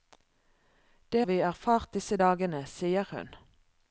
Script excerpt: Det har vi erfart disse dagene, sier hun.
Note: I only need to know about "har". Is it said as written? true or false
false